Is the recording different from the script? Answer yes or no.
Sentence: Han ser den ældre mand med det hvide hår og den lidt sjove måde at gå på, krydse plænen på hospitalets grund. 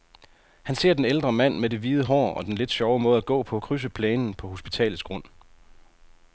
no